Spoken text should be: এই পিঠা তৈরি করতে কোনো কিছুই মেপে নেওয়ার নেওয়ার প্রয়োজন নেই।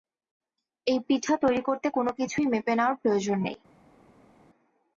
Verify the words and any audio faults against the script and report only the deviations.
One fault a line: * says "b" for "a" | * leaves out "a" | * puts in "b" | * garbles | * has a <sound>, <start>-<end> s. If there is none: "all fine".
* leaves out "নেওয়ার"